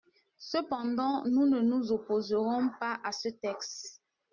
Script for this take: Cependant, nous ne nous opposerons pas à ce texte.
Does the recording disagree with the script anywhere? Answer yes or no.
no